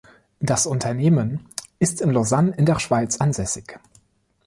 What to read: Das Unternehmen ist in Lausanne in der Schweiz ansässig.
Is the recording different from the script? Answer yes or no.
no